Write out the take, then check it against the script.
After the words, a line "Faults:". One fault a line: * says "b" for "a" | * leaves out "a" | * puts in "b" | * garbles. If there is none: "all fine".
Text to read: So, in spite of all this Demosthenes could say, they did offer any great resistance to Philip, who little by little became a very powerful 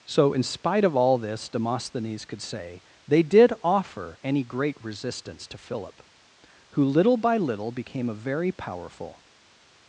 So, in spite of all this Demosthenes could say, they did offer any great resistance to Philip, who little by little became a very powerful
Faults:
all fine